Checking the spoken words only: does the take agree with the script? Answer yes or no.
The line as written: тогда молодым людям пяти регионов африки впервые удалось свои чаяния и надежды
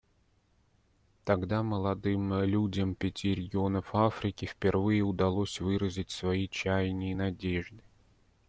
no